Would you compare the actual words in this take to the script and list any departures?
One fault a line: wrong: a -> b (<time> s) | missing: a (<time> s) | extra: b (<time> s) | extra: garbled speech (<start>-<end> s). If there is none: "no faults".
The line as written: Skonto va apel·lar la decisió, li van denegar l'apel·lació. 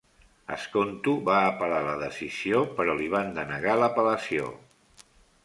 extra: però (2.8 s)